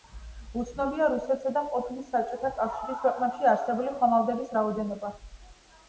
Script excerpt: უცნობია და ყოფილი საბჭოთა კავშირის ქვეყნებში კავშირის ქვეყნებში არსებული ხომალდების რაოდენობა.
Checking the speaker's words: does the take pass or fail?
fail